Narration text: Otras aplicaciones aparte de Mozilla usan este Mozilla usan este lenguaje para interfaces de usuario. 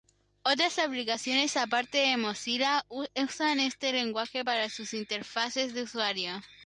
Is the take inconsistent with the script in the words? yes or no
yes